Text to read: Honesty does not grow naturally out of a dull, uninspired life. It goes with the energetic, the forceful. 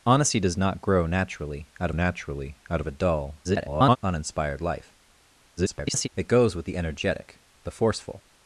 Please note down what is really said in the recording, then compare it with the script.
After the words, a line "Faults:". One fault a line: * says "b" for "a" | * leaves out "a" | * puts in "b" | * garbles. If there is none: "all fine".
Honesty does not grow naturally out naturally out of a dull, [garbled] uninspired life. [garbled] It goes with the energetic, the forceful.
Faults:
* puts in "naturally out"
* garbles
* garbles